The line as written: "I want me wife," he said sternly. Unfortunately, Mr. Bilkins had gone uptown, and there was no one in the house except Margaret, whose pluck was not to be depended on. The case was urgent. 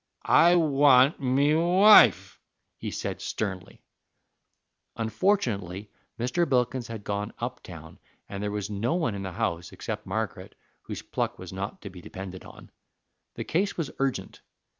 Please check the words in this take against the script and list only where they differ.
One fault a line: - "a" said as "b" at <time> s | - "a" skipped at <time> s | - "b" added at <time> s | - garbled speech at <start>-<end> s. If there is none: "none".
none